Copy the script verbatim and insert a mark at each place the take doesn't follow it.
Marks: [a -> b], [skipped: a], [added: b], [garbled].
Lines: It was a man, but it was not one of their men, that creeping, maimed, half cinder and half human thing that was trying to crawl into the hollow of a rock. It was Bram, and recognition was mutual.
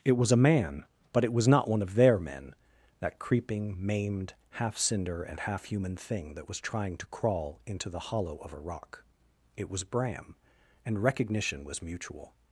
It was a man, but it was not one of their men, that creeping, maimed, half cinder and half human thing that was trying to crawl into the hollow of a rock. It was Bram, and recognition was mutual.